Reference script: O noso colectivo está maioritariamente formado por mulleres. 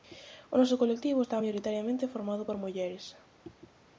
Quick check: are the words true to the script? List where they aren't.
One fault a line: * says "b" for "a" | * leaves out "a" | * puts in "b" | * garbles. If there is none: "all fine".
all fine